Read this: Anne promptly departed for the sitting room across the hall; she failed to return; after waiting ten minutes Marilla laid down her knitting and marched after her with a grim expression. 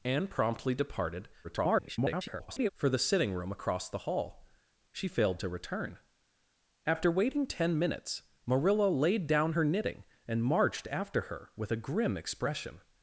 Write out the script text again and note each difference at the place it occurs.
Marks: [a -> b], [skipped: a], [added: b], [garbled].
Anne promptly departed [garbled] for the sitting room across the hall; she failed to return; after waiting ten minutes Marilla laid down her knitting and marched after her with a grim expression.